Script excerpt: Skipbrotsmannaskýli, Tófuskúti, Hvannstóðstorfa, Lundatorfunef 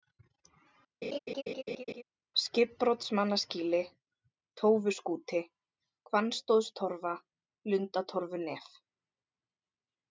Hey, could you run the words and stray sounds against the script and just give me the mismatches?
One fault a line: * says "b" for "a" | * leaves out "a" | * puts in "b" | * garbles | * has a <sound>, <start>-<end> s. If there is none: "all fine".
* has a laugh, 1.0-2.0 s